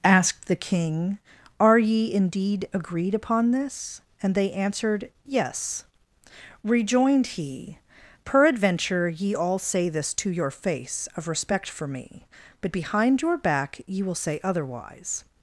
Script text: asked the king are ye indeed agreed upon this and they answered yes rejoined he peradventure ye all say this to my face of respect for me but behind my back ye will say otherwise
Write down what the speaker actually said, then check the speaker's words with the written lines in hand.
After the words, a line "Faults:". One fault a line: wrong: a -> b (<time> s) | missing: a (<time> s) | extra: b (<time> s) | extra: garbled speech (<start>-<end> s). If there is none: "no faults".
asked the king are ye indeed agreed upon this and they answered yes rejoined he peradventure ye all say this to your face of respect for me but behind your back ye will say otherwise
Faults:
wrong: my -> your (10.3 s)
wrong: my -> your (13.2 s)